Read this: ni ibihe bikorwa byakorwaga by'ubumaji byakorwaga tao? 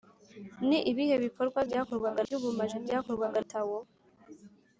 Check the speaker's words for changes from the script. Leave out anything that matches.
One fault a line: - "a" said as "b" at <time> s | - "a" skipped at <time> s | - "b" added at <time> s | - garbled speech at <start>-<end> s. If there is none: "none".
none